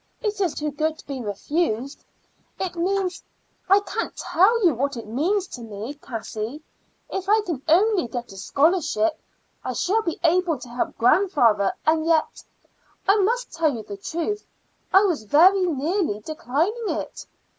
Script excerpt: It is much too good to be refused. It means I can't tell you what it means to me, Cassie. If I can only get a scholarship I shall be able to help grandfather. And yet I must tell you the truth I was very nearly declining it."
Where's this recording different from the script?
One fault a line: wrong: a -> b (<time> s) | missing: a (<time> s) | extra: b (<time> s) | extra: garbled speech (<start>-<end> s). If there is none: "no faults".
missing: much (0.6 s)